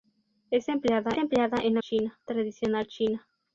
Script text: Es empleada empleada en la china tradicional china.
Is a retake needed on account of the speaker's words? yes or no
no